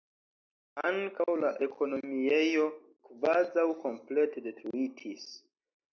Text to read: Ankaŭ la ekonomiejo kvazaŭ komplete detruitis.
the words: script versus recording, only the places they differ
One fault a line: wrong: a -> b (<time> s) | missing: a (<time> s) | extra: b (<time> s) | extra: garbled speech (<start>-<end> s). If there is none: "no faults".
no faults